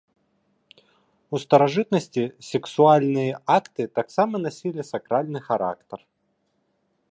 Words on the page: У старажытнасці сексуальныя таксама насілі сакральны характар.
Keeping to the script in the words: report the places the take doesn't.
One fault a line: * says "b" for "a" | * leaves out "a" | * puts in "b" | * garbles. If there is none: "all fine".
* puts in "акты"